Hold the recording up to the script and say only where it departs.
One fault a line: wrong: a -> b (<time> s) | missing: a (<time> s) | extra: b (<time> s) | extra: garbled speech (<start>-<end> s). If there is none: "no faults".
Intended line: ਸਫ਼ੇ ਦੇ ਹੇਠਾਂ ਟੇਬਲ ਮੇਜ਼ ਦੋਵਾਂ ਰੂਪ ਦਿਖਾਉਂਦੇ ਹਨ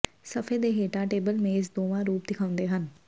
no faults